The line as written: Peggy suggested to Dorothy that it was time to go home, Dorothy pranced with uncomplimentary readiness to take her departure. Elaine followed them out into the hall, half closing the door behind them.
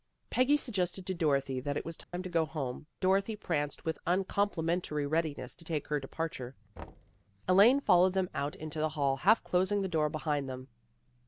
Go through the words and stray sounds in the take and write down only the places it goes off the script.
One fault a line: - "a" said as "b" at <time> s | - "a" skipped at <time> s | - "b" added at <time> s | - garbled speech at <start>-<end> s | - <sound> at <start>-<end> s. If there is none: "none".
- dropout at 2.0-2.1 s
- thud at 6.8-7.2 s